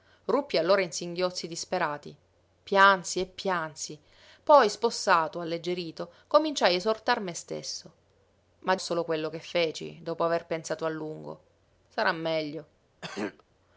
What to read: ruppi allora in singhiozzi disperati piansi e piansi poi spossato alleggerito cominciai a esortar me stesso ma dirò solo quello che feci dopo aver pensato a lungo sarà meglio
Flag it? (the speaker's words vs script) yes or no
yes